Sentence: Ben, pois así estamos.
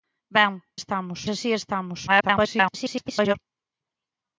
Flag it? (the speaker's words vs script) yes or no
yes